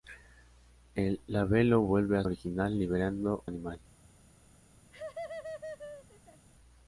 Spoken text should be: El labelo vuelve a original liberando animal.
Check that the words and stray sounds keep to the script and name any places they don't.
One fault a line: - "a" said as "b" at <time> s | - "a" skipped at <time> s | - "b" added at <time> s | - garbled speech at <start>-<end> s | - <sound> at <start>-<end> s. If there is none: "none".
- laugh at 4.9-6.5 s